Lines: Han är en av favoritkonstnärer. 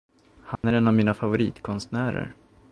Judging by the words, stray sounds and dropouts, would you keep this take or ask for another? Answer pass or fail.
fail